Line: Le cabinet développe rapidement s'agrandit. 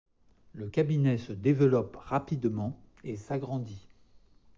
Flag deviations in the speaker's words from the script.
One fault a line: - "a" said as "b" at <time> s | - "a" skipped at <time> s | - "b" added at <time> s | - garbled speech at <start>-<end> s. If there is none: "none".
- "se" added at 1.2 s
- "et" added at 3.0 s